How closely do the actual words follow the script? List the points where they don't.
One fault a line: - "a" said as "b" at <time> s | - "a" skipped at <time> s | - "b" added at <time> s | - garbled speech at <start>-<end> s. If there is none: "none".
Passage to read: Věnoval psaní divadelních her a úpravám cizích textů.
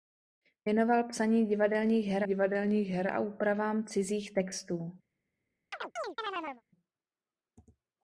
- "divadelních her" added at 2.2 s